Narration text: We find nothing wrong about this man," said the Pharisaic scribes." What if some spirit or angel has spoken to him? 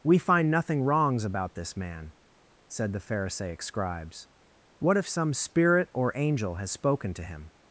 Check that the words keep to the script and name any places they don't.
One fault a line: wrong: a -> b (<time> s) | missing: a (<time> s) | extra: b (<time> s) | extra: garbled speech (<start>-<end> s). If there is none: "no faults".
wrong: wrong -> wrongs (0.8 s)